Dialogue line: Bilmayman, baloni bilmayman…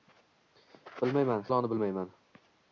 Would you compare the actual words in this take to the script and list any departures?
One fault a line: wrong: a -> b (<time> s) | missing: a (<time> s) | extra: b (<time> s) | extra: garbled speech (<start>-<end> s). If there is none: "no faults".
no faults